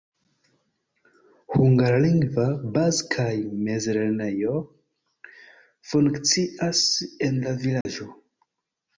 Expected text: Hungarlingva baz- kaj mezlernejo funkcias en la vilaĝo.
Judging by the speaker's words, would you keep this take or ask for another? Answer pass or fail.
pass